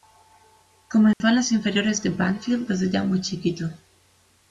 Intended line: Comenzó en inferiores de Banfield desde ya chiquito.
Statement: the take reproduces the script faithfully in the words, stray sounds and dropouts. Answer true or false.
false